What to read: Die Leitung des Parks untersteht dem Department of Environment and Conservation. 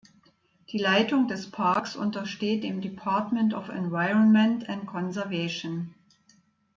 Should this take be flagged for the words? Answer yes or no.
no